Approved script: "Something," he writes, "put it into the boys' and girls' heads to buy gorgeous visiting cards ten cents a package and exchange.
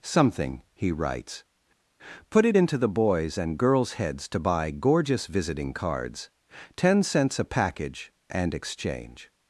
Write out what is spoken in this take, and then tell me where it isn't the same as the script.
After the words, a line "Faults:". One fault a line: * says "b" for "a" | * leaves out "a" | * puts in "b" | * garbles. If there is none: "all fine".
"Something," he writes, "put it into the boys' and girls' heads to buy gorgeous visiting cards ten cents a package and exchange.
Faults:
all fine